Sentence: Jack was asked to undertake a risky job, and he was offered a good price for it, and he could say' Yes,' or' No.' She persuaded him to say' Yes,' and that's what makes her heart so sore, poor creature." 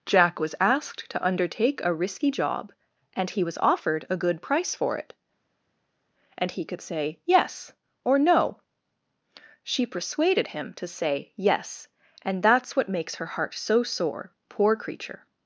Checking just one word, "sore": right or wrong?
right